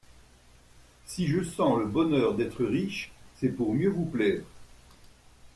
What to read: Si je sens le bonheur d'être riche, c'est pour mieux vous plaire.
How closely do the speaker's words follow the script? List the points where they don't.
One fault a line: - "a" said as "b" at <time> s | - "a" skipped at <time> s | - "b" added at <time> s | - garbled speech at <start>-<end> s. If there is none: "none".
none